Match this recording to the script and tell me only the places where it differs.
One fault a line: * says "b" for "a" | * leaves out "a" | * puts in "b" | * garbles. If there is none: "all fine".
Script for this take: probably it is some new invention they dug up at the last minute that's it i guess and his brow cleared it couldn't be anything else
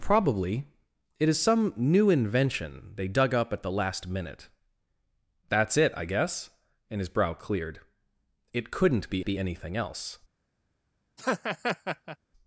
* puts in "be"